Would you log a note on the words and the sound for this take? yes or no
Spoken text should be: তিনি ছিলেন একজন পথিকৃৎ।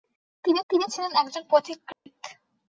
yes